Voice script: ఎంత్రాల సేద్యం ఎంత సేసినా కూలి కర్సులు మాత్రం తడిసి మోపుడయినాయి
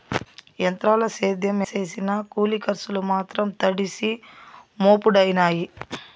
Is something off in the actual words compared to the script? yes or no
yes